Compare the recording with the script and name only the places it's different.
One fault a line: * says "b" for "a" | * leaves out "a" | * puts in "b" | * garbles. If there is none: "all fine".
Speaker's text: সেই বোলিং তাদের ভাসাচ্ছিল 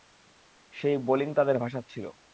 all fine